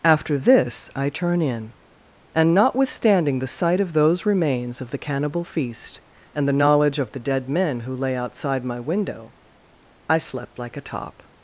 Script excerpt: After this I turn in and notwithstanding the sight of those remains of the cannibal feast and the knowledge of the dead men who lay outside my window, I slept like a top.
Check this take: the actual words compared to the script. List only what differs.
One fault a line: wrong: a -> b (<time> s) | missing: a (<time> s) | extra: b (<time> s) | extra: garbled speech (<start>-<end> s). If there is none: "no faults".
no faults